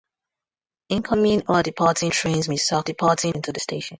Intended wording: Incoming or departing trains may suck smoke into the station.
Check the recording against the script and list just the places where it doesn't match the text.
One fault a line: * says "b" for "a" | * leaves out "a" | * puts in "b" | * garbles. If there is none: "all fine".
* says "departing" for "smoke"